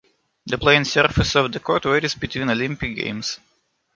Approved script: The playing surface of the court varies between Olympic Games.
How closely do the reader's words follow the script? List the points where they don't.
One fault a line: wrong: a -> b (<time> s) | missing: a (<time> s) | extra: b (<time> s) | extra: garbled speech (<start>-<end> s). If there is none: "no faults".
no faults